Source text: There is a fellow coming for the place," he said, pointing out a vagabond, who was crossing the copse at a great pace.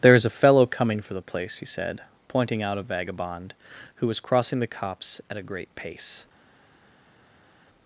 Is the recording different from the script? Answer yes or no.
no